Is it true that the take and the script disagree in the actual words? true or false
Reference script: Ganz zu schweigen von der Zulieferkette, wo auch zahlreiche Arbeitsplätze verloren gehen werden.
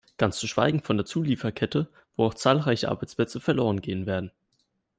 false